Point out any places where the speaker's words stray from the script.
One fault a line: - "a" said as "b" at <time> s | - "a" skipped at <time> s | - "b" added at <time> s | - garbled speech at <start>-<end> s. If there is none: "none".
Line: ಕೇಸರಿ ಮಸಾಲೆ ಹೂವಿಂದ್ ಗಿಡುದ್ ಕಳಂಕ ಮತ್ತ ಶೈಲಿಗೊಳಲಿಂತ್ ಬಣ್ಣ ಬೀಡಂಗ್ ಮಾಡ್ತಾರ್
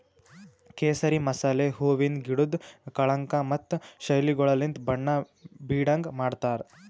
none